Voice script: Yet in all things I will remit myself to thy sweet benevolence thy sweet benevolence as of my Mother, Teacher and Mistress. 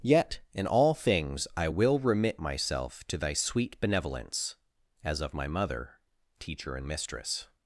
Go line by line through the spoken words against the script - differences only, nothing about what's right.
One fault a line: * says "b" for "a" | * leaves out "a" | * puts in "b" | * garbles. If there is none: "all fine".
* leaves out "thy sweet benevolence"